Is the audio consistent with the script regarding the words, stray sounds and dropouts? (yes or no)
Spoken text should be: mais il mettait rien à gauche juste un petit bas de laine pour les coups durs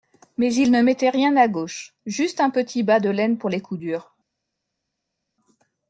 no